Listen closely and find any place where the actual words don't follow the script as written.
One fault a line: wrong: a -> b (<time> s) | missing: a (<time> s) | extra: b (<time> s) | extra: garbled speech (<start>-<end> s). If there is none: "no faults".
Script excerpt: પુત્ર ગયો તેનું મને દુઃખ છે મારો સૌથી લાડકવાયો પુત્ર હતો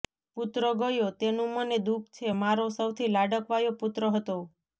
no faults